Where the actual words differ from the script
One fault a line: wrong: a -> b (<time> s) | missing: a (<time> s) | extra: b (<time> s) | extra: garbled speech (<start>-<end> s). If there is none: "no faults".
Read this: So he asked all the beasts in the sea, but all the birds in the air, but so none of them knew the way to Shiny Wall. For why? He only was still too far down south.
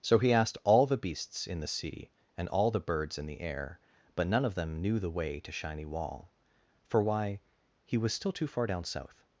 wrong: but -> and (2.4 s)
missing: so (4.3 s)
missing: only (8.0 s)